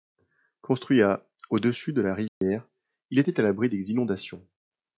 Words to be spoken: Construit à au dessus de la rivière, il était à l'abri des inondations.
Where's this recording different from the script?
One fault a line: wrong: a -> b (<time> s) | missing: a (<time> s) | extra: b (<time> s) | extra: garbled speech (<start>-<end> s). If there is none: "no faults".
no faults